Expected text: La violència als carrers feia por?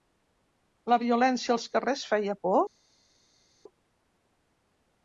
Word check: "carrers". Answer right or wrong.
right